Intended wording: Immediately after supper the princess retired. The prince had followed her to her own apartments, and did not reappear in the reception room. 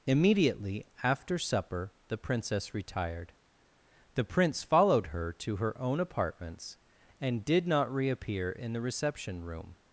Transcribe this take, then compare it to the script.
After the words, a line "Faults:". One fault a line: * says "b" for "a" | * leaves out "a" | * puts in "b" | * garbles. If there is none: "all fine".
Immediately after supper the princess retired. The prince followed her to her own apartments, and did not reappear in the reception room.
Faults:
* leaves out "had"